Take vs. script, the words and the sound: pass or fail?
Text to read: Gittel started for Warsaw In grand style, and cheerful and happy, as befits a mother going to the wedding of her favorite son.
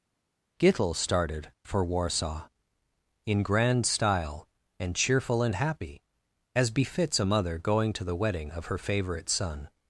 pass